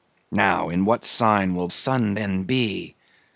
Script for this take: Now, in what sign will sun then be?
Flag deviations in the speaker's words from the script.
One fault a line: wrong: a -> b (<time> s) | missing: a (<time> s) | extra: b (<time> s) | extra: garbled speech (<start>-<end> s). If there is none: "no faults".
no faults